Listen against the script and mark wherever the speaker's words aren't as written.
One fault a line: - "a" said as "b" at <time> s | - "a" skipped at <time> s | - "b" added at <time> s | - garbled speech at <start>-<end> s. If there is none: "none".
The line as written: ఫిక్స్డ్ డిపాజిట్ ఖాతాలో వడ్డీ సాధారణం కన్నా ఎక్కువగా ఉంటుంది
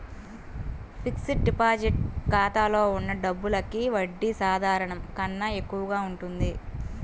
- "ఉన్న డబ్బులకి" added at 3.0 s